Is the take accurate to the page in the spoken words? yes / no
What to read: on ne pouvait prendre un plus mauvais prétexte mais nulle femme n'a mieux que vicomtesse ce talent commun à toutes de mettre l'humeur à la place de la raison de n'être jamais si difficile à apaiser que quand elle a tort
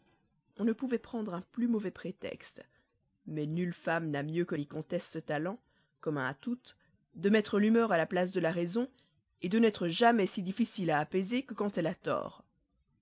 yes